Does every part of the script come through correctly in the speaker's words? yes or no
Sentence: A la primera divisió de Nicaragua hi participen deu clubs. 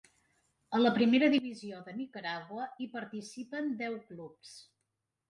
yes